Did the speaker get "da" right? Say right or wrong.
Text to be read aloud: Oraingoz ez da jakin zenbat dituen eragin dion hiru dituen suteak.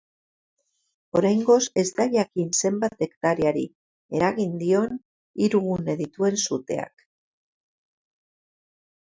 right